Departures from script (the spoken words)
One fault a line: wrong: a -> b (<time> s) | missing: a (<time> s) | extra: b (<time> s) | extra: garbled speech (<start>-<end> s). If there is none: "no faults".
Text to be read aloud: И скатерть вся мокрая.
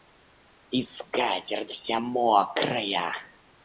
no faults